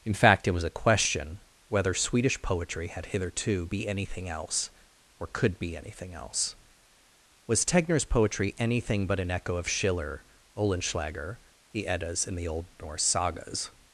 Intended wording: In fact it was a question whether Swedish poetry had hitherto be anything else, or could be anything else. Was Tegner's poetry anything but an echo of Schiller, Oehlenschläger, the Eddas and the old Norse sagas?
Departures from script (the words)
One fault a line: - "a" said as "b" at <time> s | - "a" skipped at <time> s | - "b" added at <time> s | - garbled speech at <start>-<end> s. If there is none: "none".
none